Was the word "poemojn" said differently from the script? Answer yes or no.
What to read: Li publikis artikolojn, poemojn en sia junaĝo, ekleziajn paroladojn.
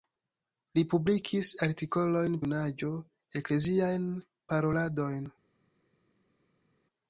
yes